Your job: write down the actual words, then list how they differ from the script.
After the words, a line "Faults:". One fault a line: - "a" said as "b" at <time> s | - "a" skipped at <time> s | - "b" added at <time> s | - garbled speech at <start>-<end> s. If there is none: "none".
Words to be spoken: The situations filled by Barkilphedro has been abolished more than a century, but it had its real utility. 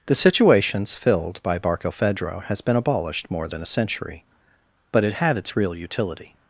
The situations filled by Barkilphedro has been abolished more than a century, but it had its real utility.
Faults:
none